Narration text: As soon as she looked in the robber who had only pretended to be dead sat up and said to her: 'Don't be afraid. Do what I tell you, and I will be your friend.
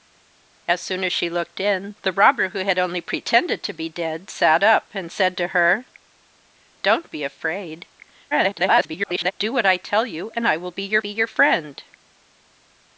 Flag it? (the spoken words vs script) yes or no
yes